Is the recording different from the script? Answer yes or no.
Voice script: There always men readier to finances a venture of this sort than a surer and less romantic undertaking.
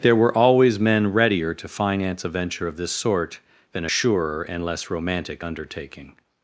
yes